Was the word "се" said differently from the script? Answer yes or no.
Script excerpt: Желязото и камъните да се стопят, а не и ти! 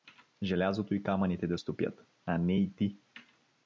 yes